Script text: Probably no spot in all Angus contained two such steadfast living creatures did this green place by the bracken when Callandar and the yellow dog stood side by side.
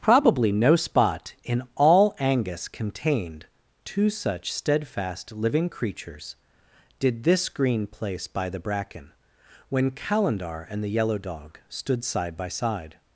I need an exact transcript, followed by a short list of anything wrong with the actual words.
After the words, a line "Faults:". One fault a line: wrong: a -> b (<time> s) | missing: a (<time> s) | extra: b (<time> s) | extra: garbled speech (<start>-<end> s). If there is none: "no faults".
Probably no spot in all Angus contained two such steadfast living creatures did this green place by the bracken when Callandar and the yellow dog stood side by side.
Faults:
no faults